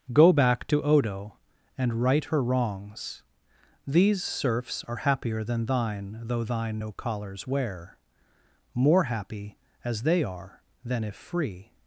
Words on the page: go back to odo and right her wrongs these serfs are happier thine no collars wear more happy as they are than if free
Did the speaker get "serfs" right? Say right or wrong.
right